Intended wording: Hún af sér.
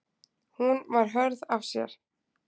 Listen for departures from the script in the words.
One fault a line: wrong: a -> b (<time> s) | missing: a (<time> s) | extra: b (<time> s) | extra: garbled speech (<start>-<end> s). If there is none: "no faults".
extra: var hörð (0.9 s)